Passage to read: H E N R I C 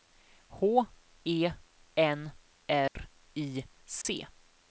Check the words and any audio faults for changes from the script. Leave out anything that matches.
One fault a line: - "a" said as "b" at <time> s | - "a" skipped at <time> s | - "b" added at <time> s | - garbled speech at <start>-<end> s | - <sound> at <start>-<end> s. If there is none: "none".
- dropout at 2.9-3.0 s
- dropout at 4.0-4.1 s